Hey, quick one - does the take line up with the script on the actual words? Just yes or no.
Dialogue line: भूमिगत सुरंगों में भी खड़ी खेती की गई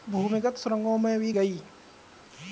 no